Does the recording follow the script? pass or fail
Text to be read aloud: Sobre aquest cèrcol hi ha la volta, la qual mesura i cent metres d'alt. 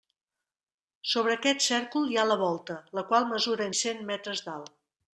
pass